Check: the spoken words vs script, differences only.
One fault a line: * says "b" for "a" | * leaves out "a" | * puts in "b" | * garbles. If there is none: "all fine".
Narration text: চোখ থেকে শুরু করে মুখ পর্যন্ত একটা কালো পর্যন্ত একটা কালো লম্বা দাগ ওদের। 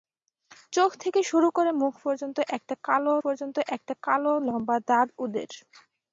all fine